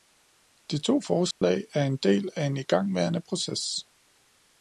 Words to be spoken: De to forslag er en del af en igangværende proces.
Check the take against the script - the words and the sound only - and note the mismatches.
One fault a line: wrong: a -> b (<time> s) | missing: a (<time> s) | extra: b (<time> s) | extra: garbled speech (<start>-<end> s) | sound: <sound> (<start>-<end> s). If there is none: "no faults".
sound: dropout (1.3-1.4 s)